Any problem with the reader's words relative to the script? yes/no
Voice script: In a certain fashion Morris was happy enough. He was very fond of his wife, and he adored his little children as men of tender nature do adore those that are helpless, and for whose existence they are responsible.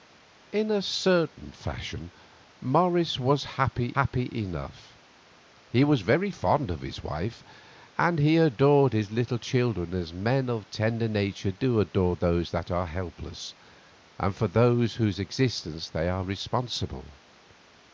yes